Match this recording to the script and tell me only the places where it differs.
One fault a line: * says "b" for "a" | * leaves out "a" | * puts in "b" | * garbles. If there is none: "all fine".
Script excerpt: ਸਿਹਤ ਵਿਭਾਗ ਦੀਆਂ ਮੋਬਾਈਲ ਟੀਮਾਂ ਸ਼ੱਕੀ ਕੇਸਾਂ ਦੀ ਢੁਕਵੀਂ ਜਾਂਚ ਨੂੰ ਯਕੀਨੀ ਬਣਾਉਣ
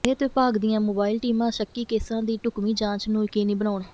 all fine